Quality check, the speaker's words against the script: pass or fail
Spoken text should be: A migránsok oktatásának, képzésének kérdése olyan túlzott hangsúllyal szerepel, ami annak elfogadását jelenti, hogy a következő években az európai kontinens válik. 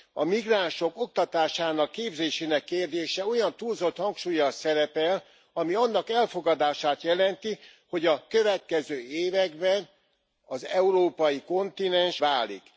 pass